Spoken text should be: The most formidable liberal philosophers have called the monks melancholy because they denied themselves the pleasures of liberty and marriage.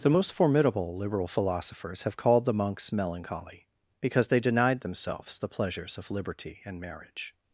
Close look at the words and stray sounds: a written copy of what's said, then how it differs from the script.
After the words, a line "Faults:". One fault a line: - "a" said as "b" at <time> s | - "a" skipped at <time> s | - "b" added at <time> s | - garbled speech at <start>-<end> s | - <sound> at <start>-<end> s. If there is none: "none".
The most formidable liberal philosophers have called the monks melancholy because they denied themselves the pleasures of liberty and marriage.
Faults:
none